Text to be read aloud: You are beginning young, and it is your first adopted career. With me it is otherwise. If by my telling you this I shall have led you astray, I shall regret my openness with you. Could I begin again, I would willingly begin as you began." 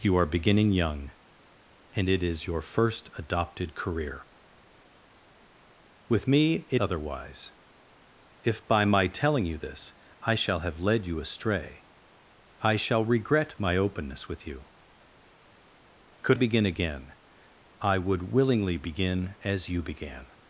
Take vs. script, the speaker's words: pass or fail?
fail